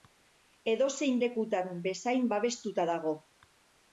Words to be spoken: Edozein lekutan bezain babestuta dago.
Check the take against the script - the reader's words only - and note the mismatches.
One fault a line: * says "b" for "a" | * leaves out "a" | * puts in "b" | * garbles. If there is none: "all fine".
all fine